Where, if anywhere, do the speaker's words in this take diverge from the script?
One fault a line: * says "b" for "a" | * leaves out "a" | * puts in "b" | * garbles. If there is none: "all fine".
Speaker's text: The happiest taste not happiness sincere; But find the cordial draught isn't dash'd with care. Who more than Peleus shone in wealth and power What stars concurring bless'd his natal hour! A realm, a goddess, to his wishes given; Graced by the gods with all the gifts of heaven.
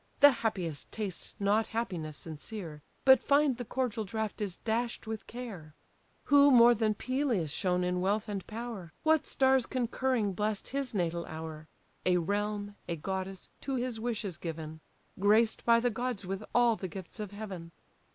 * says "is" for "isn't"